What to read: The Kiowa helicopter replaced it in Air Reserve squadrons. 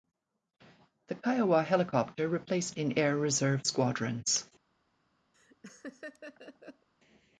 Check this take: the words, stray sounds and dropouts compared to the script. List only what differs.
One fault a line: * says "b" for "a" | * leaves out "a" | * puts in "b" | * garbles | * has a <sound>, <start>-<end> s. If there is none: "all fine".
* leaves out "it"
* has a laugh, 5.3-6.9 s